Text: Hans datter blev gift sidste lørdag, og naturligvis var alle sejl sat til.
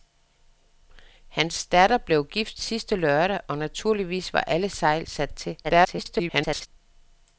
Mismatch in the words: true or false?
true